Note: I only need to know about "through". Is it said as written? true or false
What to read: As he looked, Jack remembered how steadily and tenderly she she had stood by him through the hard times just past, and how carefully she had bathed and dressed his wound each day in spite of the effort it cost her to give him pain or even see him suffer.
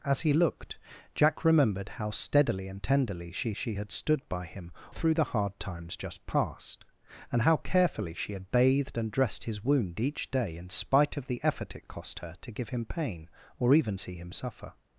true